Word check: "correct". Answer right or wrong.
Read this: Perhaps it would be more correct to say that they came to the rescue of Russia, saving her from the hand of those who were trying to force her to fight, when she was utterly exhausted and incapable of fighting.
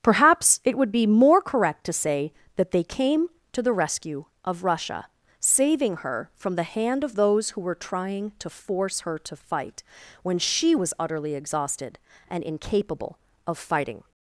right